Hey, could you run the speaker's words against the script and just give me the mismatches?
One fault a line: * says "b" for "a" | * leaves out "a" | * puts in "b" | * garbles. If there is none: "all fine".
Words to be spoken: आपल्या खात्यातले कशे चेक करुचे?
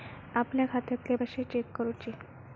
all fine